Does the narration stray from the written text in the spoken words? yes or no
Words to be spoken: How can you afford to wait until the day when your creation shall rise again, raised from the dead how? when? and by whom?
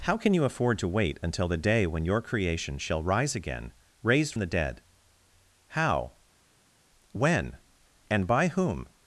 yes